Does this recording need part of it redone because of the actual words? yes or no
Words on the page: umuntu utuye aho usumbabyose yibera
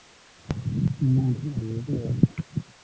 yes